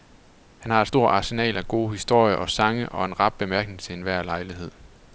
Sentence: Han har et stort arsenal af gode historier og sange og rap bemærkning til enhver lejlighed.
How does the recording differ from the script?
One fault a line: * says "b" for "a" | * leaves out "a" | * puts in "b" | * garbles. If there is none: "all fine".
* puts in "en"